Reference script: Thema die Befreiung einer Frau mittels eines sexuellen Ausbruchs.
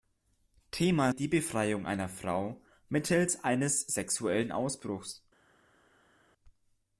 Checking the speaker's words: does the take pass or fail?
pass